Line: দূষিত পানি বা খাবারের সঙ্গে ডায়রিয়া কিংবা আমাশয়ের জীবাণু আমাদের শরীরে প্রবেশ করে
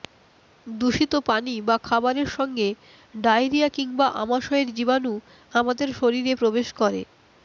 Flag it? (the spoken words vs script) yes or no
no